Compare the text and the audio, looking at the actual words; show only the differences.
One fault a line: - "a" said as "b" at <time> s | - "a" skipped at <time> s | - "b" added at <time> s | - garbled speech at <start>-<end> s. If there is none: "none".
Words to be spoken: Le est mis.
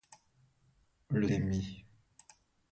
none